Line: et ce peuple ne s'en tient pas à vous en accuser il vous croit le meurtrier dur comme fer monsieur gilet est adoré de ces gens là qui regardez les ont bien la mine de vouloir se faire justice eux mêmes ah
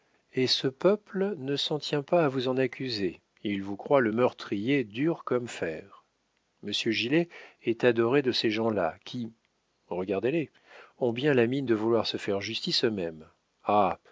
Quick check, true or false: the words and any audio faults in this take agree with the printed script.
true